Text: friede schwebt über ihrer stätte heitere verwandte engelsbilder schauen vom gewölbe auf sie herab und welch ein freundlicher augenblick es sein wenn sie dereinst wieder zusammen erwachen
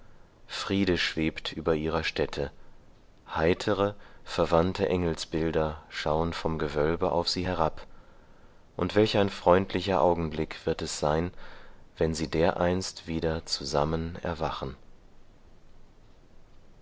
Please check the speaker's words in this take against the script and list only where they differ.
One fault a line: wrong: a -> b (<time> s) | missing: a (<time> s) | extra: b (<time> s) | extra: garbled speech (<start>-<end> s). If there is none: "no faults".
extra: wird (10.6 s)